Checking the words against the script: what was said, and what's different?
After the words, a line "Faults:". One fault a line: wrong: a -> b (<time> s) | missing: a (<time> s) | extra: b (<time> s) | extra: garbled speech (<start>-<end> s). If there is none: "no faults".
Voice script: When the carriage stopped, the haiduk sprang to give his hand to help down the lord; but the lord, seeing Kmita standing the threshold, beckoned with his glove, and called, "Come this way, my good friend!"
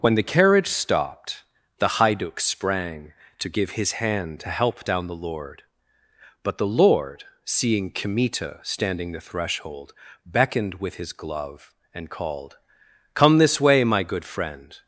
When the carriage stopped, the haiduk sprang to give his hand to help down the lord; but the lord, seeing Kmita standing the threshold, beckoned with his glove, and called, "Come this way, my good friend!"
Faults:
no faults